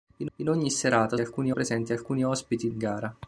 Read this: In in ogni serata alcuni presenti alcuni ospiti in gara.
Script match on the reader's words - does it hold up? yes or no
yes